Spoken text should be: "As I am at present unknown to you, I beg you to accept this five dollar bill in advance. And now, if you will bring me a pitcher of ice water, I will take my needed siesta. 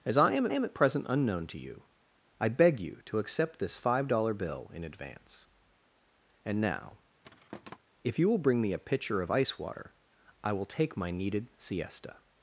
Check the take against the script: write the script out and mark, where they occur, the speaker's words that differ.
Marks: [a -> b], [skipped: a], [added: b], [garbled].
"As I am [added: am] at present unknown to you, I beg you to accept this five dollar bill in advance. And now, if you will bring me a pitcher of ice water, I will take my needed siesta.